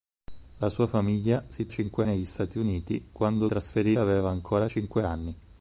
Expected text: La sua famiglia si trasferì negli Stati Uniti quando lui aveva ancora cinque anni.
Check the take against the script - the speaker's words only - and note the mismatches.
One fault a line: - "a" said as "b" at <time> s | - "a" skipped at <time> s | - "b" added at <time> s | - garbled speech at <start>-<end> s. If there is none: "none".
- "trasferì" said as "cinque" at 1.7 s
- "lui" said as "trasferì" at 3.5 s